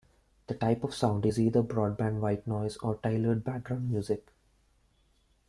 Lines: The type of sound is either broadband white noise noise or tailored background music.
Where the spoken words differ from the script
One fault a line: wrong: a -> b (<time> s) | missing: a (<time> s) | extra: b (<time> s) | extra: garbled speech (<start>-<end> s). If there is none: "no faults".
missing: noise (2.8 s)